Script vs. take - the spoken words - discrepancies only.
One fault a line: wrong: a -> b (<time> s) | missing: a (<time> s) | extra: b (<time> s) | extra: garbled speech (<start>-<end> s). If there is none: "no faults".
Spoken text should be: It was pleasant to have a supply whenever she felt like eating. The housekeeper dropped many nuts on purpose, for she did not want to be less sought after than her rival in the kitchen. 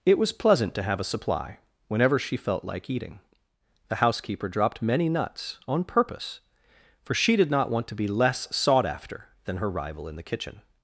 no faults